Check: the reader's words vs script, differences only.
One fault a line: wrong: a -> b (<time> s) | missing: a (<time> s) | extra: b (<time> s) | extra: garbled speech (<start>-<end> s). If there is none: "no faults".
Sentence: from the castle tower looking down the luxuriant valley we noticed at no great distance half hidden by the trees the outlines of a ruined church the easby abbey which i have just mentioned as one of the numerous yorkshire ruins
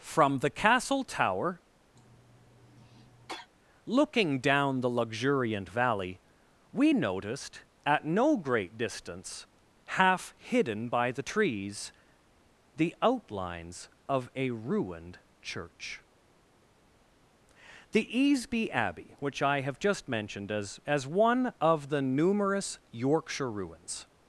extra: as (20.9 s)